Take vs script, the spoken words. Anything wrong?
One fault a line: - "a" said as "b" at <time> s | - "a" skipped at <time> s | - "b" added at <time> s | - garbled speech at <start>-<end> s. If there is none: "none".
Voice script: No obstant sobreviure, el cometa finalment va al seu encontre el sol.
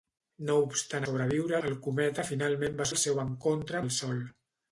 none